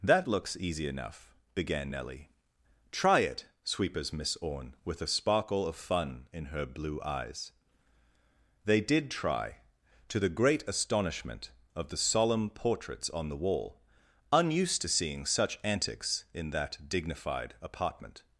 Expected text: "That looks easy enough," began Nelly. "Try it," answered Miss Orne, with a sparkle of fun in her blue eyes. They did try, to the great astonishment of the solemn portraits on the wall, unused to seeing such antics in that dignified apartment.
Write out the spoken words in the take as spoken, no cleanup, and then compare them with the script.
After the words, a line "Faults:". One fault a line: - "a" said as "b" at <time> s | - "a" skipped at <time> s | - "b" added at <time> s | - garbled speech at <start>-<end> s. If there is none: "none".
"That looks easy enough," began Nelly. "Try it," sweepers Miss Orne, with a sparkle of fun in her blue eyes. They did try, to the great astonishment of the solemn portraits on the wall, unused to seeing such antics in that dignified apartment.
Faults:
- "answered" said as "sweepers" at 3.6 s